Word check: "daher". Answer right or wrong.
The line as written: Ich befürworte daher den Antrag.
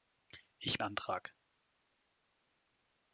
wrong